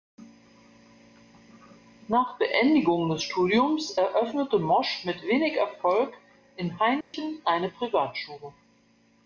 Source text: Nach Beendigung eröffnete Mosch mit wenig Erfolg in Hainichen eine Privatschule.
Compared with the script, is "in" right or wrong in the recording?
right